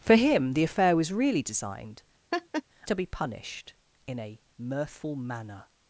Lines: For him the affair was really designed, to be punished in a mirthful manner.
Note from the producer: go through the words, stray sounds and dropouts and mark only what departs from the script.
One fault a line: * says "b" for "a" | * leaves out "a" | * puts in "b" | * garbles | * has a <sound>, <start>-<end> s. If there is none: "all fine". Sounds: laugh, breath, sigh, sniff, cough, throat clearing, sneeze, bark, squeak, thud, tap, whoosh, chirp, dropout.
* has a laugh, 2.3-2.6 s